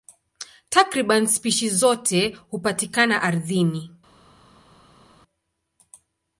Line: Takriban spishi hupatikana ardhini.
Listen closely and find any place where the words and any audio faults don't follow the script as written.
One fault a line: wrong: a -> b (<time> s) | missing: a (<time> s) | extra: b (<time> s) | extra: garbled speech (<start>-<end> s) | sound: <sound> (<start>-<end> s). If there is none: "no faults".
extra: zote (1.7 s)